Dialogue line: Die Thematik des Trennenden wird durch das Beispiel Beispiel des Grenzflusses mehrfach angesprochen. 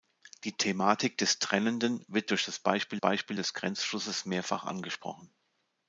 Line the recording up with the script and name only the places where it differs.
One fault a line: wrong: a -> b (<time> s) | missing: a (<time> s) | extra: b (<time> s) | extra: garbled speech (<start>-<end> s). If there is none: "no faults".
no faults